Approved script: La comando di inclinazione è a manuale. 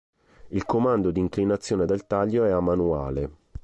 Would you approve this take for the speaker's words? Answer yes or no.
no